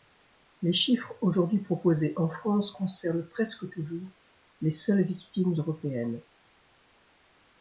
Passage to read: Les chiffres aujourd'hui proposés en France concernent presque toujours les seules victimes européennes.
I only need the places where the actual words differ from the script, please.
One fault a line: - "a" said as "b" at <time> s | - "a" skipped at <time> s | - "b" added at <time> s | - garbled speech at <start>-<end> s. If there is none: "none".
none